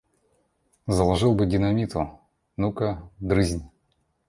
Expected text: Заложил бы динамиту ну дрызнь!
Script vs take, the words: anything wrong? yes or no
yes